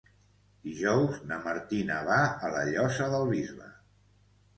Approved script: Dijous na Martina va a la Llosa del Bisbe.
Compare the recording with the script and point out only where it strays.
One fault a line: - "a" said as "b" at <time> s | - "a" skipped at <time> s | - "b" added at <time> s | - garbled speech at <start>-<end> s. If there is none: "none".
none